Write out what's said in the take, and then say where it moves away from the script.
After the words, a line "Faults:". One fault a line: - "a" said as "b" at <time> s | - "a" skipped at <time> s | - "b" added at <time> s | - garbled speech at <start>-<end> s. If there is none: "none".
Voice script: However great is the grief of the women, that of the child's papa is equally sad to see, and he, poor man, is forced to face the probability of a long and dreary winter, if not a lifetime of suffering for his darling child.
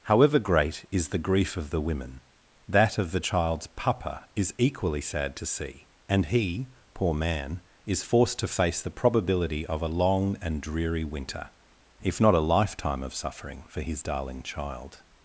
However great is the grief of the women, that of the child's papa is equally sad to see, and he, poor man, is forced to face the probability of a long and dreary winter, if not a lifetime of suffering for his darling child.
Faults:
none